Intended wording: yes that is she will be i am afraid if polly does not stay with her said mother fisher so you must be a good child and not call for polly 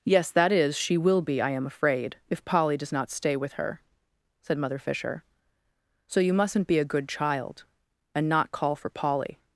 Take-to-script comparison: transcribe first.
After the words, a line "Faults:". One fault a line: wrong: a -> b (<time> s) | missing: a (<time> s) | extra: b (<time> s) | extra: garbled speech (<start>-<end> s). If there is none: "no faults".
yes that is she will be i am afraid if polly does not stay with her said mother fisher so you mustn't be a good child and not call for polly
Faults:
wrong: must -> mustn't (6.3 s)